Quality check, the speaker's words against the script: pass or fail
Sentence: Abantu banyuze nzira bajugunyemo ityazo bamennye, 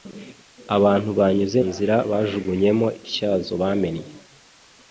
pass